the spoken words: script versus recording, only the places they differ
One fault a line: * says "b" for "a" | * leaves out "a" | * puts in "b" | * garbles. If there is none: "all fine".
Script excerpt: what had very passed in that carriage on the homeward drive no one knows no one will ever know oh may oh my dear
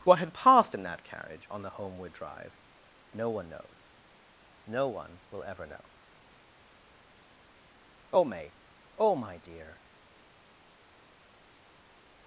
* leaves out "very"